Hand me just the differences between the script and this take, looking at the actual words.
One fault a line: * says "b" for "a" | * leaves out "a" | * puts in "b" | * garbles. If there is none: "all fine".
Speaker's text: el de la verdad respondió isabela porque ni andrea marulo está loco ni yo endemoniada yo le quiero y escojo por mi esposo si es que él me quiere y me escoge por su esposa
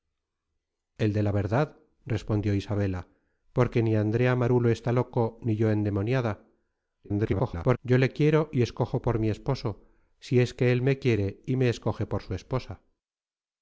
* garbles